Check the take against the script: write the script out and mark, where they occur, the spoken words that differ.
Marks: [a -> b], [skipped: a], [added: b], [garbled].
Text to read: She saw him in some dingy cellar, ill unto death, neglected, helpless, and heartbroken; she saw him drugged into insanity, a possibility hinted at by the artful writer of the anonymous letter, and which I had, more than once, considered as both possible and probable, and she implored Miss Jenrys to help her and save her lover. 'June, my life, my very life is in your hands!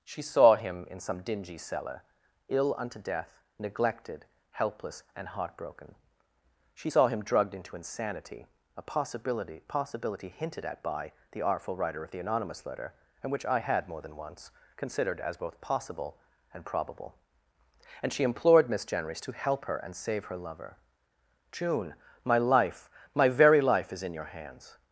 She saw him in some dingy cellar, ill unto death, neglected, helpless, and heartbroken; she saw him drugged into insanity, a possibility [added: possibility] hinted at by the artful writer of the anonymous letter, and which I had, more than once, considered as both possible and probable, and she implored Miss Jenrys to help her and save her lover. 'June, my life, my very life is in your hands!